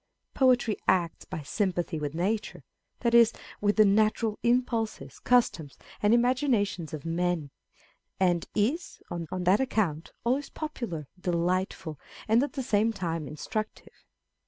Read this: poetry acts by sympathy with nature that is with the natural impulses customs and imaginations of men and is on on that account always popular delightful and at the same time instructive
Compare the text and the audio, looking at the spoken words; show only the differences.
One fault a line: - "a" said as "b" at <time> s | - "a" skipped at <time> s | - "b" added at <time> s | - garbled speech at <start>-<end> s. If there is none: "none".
none